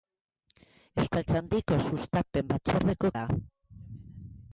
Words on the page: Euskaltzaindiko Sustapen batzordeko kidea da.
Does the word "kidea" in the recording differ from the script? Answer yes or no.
yes